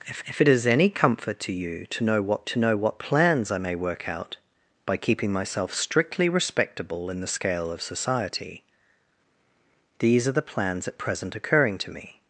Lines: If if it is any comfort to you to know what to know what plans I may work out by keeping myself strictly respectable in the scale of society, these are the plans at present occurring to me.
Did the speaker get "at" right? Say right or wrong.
right